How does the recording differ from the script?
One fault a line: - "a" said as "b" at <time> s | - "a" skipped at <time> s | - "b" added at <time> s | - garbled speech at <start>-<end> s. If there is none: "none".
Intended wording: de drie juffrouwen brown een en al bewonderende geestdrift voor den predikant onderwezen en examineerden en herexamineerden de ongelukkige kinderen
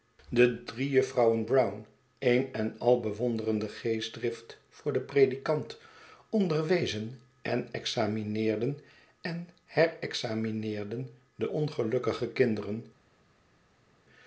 none